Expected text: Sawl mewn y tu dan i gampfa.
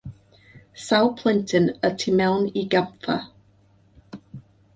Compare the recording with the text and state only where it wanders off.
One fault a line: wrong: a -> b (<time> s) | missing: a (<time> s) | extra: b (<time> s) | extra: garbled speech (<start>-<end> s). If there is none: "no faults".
wrong: mewn -> plentyn (1.2 s)
wrong: dan -> mewn (2.2 s)